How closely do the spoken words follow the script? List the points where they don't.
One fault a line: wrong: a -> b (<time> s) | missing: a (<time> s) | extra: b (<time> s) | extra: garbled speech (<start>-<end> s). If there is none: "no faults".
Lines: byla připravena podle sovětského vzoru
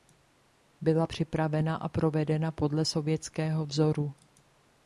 extra: a provedena (1.8 s)